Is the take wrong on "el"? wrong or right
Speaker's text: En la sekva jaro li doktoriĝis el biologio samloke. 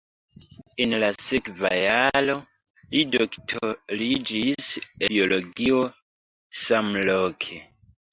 wrong